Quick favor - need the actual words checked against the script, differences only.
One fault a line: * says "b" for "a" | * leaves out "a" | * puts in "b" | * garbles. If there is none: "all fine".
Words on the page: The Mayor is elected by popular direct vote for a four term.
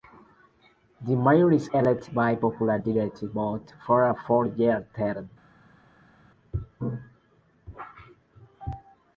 * puts in "year"